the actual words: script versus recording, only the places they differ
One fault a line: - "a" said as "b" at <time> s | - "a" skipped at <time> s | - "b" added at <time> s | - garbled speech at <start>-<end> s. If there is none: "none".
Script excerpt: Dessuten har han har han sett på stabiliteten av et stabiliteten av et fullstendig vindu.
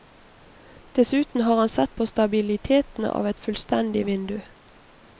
- "har han" skipped at 1.7 s
- "stabiliteten av et" skipped at 3.4 s